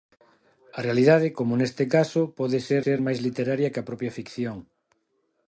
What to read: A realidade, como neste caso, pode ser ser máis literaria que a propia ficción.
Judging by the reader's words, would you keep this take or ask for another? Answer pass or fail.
pass